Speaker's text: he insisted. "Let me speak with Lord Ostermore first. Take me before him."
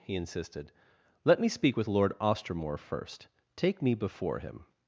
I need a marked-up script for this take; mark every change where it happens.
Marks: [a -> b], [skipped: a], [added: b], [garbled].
he insisted. "Let me speak with Lord Ostermore first. Take me before him."